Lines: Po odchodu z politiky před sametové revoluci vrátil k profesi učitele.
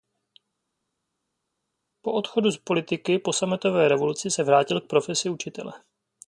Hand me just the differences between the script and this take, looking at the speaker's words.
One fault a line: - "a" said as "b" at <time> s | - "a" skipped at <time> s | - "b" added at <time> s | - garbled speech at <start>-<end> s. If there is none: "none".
- "před" said as "po" at 3.2 s
- "se" added at 4.3 s